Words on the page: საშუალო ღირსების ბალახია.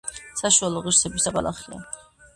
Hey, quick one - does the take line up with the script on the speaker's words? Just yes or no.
yes